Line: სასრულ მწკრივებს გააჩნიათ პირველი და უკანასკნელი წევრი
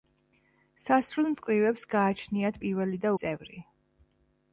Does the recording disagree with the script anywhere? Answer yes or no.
yes